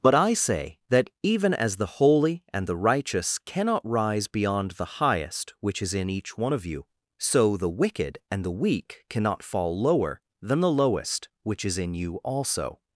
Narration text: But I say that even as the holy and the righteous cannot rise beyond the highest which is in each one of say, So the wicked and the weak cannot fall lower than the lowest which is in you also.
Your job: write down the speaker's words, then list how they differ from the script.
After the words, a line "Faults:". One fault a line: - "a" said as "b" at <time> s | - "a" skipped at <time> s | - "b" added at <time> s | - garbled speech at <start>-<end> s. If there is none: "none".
But I say that even as the holy and the righteous cannot rise beyond the highest which is in each one of you, So the wicked and the weak cannot fall lower than the lowest which is in you also.
Faults:
- "say" said as "you" at 6.7 s